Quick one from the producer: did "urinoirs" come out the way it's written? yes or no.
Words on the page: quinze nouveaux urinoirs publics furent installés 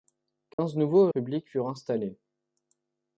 no